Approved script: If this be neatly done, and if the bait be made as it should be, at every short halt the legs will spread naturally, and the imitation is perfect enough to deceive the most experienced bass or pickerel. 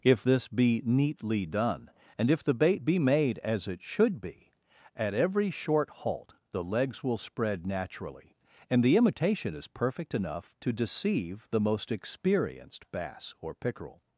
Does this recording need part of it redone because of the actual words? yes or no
no